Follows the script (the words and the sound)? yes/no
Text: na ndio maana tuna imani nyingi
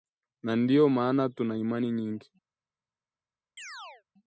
no